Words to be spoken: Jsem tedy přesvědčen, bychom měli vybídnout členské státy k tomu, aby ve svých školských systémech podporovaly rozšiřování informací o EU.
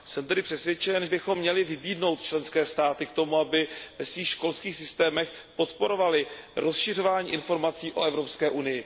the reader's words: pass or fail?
pass